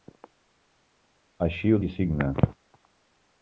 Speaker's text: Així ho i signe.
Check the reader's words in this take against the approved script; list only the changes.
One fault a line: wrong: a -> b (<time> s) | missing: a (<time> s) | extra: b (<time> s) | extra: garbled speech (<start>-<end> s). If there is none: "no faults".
no faults